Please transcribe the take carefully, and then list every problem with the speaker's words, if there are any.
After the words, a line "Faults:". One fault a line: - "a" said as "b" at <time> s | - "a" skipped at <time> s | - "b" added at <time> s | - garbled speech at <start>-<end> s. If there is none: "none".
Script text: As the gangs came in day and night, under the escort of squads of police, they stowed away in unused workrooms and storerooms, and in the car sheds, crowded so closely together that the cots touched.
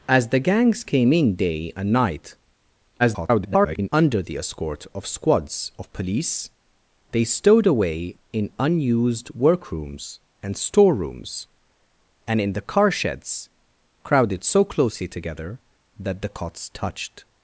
As the gangs came in day and night, [garbled] under the escort of squads of police, they stowed away in unused workrooms and storerooms, and in the car sheds, crowded so closely together that the cots touched.
Faults:
- garbled speech at 3.0-3.9 s